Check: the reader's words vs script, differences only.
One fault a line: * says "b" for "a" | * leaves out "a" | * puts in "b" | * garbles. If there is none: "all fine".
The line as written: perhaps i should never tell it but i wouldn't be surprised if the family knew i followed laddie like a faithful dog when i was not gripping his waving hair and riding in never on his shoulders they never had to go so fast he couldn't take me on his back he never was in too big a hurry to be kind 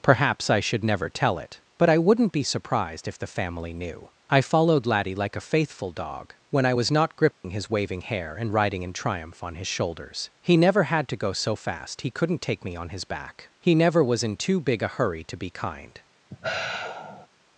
* says "triumph" for "never"
* says "he" for "they"